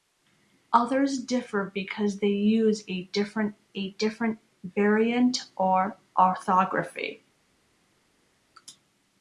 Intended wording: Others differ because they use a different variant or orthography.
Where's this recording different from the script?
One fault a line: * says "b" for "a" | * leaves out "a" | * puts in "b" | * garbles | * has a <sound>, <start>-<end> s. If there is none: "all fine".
* puts in "a different"